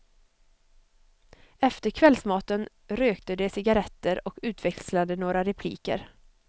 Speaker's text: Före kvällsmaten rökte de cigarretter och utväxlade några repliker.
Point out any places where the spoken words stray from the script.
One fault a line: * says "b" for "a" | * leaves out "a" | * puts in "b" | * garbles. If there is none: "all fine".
* says "Efter" for "Före"